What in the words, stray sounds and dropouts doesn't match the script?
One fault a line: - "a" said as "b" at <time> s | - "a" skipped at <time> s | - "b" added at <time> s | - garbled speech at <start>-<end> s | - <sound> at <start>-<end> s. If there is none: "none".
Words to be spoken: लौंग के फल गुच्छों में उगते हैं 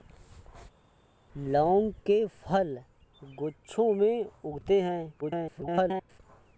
- garbled speech at 5.2-6.2 s